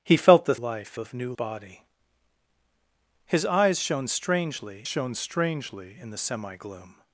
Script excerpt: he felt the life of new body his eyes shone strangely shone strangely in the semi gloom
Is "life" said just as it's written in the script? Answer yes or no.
yes